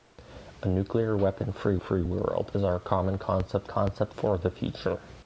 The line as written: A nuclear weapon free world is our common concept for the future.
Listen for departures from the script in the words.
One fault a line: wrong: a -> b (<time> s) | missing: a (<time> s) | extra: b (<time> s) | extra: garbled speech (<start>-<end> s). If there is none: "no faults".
extra: free (1.8 s)
extra: concept (3.7 s)